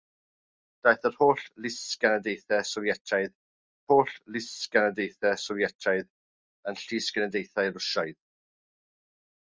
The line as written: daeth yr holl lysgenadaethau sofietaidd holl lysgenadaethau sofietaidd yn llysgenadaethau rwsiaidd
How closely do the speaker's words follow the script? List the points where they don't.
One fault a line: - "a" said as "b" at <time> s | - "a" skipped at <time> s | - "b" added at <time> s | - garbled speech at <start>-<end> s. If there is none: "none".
none